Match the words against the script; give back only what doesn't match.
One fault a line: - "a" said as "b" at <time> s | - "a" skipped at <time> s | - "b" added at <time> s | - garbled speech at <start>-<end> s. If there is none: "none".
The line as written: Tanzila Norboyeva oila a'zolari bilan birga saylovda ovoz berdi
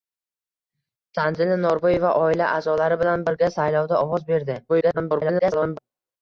- garbled speech at 4.7-5.8 s